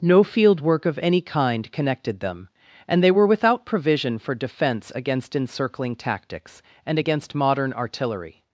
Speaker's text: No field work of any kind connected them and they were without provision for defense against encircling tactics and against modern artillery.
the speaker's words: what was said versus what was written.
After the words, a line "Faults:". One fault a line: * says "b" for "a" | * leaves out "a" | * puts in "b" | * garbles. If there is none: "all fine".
No field work of any kind connected them and they were without provision for defense against encircling tactics and against modern artillery.
Faults:
all fine